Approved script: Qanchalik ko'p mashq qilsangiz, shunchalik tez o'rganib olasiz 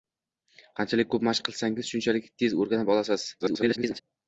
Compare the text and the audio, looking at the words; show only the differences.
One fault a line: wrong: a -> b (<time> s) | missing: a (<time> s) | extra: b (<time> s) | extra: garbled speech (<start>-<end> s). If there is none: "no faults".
extra: garbled speech (3.4-4.0 s)